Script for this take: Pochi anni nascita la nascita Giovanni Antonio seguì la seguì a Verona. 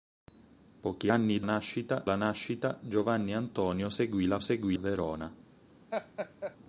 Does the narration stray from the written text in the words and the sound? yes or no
yes